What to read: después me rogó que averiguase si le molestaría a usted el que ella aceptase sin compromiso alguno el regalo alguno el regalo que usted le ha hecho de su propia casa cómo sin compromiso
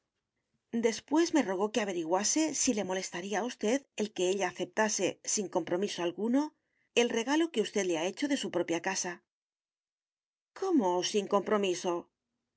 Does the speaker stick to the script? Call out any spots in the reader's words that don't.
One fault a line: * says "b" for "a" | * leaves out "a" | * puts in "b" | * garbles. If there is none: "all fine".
* leaves out "alguno el regalo"